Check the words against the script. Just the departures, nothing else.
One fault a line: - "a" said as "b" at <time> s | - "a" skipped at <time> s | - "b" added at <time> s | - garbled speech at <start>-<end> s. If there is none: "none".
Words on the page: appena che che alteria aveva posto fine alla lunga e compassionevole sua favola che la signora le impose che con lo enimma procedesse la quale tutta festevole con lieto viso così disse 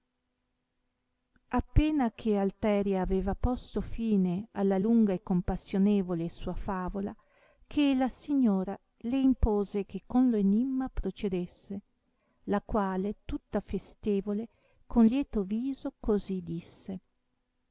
- "che" skipped at 2.4 s